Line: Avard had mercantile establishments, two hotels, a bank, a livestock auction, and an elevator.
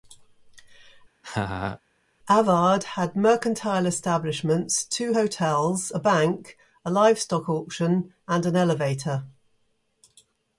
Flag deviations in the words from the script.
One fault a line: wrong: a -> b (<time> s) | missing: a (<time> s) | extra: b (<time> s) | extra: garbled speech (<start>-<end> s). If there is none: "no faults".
no faults